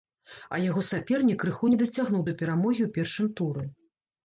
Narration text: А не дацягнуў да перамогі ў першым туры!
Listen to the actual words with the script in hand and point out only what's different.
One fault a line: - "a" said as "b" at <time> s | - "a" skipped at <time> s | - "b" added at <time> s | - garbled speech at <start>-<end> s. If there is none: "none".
- "яго сапернік крыху" added at 0.6 s